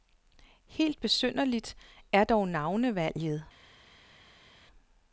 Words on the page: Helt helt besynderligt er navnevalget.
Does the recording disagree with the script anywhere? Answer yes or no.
yes